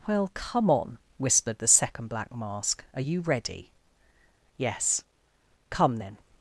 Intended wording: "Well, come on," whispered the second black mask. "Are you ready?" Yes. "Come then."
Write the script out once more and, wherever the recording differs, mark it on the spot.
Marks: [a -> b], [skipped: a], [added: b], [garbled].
"Well, come on," whispered the second black mask. "Are you ready?" Yes. "Come then."